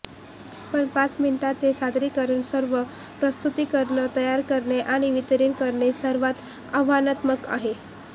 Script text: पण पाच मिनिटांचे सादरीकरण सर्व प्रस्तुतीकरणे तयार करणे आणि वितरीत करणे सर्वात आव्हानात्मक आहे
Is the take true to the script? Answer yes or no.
yes